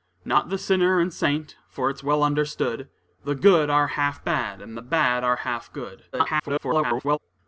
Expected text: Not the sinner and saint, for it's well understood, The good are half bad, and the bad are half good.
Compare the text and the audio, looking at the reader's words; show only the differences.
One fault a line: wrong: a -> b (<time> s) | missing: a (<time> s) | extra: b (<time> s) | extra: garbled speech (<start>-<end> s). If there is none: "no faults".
extra: garbled speech (6.1-7.2 s)